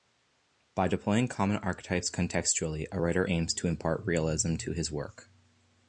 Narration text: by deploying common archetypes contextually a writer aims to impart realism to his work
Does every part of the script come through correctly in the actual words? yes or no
yes